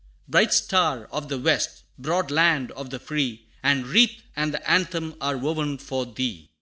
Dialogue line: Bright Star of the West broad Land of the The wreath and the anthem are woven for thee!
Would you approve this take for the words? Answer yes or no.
no